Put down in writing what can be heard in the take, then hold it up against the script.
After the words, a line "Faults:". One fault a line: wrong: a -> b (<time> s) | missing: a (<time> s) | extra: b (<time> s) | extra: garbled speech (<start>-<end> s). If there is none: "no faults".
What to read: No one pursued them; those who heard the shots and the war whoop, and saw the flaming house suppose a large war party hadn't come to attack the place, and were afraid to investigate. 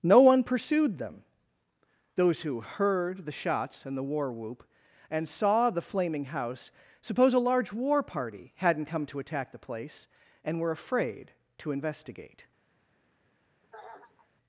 No one pursued them; those who heard the shots and the war whoop, and saw the flaming house suppose a large war party hadn't come to attack the place, and were afraid to investigate.
Faults:
no faults